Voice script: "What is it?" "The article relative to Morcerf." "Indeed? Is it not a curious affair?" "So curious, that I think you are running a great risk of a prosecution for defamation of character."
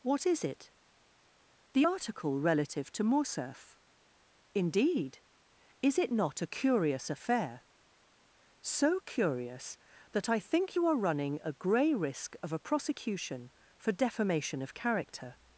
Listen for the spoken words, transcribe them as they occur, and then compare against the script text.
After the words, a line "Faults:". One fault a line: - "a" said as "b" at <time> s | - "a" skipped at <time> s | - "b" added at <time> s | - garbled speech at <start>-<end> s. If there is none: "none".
"What is it?" "The article relative to Morcerf." "Indeed? Is it not a curious affair?" "So curious, that I think you are running a grey risk of a prosecution for defamation of character."
Faults:
- "great" said as "grey" at 11.5 s